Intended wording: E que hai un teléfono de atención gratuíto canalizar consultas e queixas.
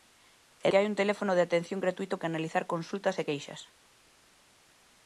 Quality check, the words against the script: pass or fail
pass